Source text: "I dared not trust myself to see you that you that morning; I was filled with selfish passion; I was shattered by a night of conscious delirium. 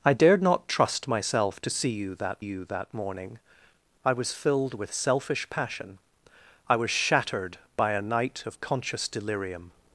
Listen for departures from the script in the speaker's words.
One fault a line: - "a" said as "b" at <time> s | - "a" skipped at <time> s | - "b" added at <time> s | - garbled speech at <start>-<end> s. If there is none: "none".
none